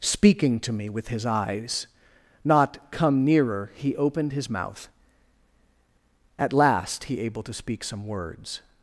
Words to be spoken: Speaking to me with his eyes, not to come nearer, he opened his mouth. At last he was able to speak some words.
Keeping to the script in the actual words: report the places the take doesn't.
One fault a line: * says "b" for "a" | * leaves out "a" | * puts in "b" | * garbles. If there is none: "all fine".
* leaves out "to"
* leaves out "was"